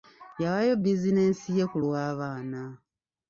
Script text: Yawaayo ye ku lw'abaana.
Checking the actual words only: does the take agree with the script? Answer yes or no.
no